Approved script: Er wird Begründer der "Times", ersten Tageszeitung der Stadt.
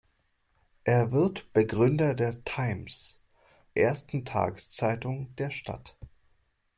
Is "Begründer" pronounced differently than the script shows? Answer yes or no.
no